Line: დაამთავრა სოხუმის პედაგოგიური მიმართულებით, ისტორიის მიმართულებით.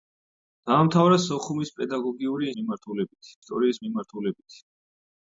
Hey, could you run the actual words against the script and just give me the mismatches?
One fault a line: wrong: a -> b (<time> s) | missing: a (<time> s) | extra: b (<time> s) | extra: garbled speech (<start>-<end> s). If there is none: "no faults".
no faults